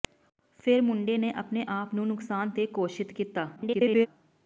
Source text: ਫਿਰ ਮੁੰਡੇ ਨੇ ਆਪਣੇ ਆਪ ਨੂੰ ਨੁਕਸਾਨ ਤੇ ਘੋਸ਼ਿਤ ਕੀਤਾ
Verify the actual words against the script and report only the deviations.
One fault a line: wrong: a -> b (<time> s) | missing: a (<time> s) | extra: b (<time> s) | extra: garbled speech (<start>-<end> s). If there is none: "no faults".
extra: garbled speech (3.6-4.1 s)